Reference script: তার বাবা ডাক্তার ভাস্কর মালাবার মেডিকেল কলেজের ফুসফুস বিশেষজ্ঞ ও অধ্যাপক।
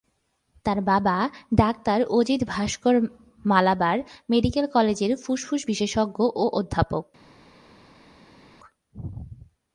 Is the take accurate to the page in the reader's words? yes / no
no